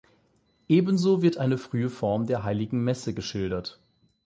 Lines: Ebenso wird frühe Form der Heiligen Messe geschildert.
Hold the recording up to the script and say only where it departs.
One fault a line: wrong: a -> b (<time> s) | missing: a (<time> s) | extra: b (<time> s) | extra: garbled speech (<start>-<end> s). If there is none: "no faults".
extra: eine (1.4 s)